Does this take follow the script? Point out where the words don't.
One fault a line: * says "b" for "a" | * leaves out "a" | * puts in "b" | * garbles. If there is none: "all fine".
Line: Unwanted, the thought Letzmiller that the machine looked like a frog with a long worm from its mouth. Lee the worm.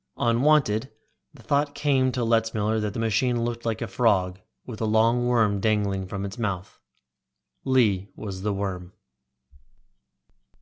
* puts in "came to"
* puts in "dangling"
* puts in "was"